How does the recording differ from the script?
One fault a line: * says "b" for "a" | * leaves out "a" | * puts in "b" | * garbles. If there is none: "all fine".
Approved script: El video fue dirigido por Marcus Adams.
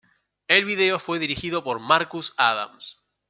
all fine